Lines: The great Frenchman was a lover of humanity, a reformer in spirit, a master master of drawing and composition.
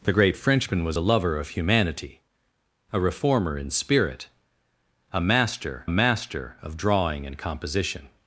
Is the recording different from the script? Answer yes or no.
no